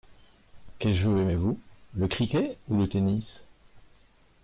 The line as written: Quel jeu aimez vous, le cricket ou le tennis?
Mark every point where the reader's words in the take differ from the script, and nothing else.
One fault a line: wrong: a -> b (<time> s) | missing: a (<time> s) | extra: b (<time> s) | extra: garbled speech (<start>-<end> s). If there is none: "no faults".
no faults